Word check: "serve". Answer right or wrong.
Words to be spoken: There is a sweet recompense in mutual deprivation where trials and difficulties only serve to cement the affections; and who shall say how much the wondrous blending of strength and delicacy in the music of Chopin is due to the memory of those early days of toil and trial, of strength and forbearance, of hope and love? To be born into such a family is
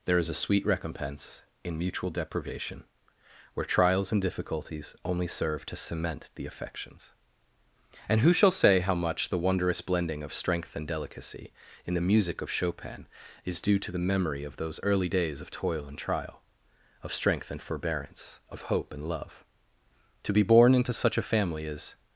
right